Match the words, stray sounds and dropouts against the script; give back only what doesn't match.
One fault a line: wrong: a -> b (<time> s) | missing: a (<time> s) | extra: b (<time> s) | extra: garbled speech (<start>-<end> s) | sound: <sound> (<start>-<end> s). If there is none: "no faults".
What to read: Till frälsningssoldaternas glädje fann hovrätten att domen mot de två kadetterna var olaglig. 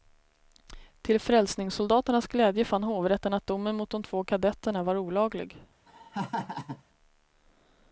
sound: laugh (5.9-6.8 s)